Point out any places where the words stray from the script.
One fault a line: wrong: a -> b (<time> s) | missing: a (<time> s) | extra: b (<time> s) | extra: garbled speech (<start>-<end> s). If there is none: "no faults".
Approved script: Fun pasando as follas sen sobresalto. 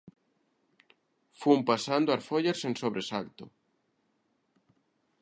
no faults